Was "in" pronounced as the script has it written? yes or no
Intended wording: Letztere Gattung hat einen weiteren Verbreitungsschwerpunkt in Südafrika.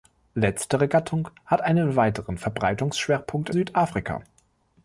no